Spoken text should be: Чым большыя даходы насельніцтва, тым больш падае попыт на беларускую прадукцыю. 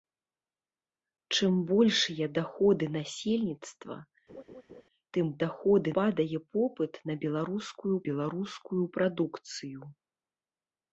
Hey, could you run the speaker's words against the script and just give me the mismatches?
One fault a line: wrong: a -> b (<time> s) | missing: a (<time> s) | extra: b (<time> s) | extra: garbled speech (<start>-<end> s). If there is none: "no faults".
wrong: больш -> даходы (5.4 s)
extra: беларускую (8.1 s)